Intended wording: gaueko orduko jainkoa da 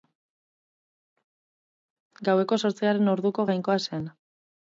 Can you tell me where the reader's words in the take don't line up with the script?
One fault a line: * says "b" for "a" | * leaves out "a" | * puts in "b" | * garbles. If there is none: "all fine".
* puts in "zortzigarren"
* says "zen" for "da"